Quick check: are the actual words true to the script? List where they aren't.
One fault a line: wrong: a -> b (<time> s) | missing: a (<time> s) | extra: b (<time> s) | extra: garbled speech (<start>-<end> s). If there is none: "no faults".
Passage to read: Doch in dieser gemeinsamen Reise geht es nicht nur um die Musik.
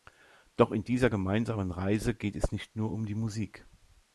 no faults